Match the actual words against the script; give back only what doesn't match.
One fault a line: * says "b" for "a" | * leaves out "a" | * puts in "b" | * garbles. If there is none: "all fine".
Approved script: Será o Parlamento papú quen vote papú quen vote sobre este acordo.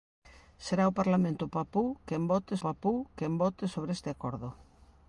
all fine